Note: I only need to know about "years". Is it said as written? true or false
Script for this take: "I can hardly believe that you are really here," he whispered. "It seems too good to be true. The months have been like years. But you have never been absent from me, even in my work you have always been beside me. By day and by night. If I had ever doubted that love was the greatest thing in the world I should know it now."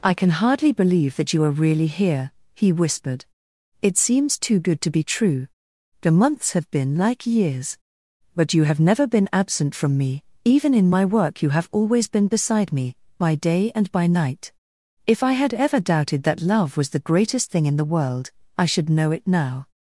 true